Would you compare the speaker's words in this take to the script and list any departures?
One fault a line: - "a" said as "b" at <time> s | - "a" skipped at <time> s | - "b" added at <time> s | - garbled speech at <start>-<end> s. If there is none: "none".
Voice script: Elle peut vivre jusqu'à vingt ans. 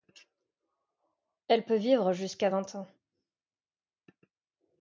none